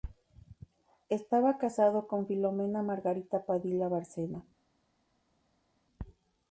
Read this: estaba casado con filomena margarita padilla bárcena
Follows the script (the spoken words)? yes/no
yes